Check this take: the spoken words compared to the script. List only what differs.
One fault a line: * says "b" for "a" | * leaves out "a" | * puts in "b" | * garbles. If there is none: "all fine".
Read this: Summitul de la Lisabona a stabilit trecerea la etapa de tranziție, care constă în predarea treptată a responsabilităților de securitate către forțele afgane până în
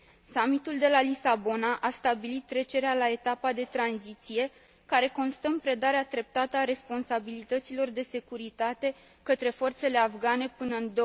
all fine